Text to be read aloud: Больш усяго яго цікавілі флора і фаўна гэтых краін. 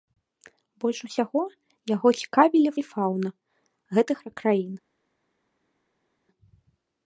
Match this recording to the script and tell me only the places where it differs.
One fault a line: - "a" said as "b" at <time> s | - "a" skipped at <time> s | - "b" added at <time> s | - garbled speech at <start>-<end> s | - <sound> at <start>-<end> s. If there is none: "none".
- "флора" skipped at 2.7 s